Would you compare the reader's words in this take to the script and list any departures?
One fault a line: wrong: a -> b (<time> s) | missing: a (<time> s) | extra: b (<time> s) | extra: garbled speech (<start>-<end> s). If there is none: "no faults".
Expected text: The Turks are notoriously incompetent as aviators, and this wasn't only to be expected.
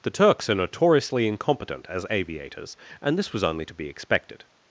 wrong: wasn't -> was (3.3 s)